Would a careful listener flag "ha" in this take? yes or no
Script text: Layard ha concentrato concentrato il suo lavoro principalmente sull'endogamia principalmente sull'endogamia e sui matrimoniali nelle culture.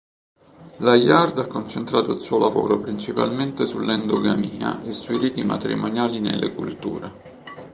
no